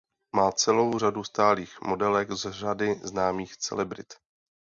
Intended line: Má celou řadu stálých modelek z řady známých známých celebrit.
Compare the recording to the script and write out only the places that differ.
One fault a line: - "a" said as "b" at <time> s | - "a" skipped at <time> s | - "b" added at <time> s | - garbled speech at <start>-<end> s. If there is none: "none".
- "známých" skipped at 3.6 s